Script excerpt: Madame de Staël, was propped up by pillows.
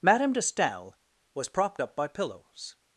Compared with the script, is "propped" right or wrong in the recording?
right